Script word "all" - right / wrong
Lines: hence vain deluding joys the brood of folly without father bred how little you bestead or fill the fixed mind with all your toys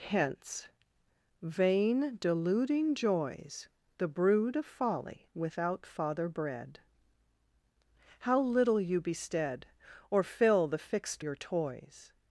wrong